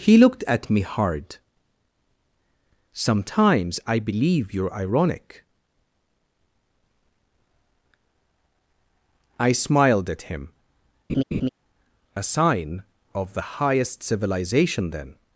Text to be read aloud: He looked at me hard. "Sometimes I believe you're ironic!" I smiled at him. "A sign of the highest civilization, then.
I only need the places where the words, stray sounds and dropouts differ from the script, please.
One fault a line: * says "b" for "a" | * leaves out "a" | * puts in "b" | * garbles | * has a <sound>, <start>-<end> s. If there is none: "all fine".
* has a laugh, 11.1-11.5 s